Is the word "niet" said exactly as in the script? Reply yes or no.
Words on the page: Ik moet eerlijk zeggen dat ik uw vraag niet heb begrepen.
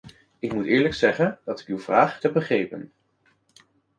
no